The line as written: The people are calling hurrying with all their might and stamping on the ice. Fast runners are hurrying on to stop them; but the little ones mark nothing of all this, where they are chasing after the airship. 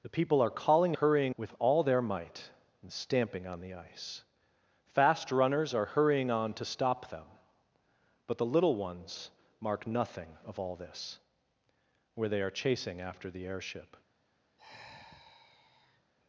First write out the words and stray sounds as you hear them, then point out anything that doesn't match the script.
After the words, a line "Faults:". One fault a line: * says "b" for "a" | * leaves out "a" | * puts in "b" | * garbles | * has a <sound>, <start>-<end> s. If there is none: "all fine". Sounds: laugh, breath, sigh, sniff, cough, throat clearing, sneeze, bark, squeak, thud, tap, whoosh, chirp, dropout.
The people are calling hurrying with all their might and stamping on the ice. Fast runners are hurrying on to stop them; but the little ones mark nothing of all this, where they are chasing after the airship.
Faults:
* has a sigh, 14.6-16.1 s